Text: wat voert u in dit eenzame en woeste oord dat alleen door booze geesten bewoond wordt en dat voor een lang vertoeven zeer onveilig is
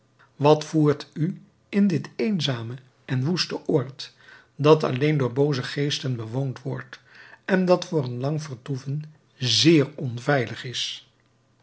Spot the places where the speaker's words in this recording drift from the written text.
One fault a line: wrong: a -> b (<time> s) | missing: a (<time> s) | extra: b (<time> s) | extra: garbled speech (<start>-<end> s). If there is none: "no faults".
no faults